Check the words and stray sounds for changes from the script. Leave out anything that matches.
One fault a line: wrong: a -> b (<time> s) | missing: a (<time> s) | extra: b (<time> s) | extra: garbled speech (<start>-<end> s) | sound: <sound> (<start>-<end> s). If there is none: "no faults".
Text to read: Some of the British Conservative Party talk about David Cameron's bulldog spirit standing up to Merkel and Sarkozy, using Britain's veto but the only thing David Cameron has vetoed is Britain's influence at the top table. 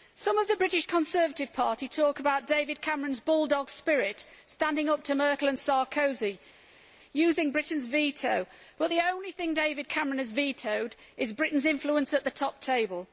no faults